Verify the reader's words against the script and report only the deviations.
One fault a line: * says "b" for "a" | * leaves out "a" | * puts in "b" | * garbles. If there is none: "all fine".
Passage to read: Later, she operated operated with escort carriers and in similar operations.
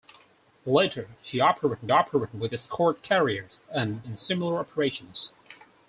all fine